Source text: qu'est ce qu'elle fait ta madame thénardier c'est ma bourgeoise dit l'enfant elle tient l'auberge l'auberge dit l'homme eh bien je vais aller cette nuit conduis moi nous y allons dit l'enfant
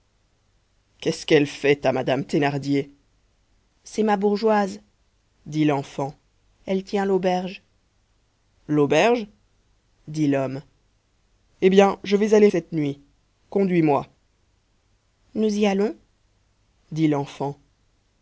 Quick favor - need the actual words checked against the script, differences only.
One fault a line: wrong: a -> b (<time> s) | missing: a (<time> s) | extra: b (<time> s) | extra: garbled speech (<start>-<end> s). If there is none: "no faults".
no faults